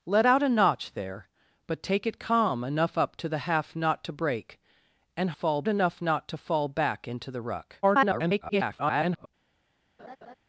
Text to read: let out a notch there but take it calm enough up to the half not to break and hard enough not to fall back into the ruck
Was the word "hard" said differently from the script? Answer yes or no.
yes